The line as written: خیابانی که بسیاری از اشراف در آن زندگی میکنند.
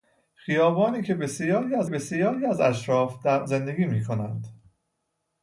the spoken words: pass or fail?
fail